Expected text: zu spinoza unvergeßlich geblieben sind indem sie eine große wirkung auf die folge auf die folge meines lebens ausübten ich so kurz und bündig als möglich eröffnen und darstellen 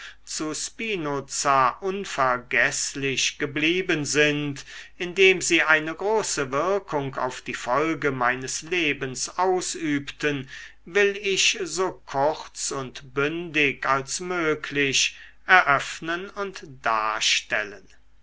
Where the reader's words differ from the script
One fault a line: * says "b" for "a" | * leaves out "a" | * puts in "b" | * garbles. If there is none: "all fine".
* leaves out "auf die folge"
* puts in "will"